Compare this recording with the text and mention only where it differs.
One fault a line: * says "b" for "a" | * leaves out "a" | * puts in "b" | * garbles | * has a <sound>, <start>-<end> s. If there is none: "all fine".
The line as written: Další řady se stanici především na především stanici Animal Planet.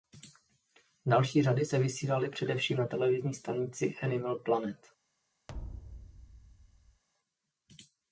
* says "vysílaly" for "stanici"
* says "televizní" for "především"
* has a thud, 5.5-7.0 s